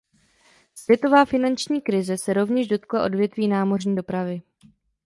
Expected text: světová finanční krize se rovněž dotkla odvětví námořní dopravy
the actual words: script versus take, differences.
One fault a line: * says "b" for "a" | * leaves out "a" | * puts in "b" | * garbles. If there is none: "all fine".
all fine